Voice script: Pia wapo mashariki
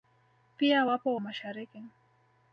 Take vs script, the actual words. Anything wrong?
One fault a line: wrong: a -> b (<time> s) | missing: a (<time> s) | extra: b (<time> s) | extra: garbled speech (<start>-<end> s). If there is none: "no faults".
no faults